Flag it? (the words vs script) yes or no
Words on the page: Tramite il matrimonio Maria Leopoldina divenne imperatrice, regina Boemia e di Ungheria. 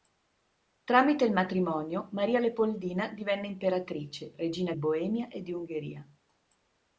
no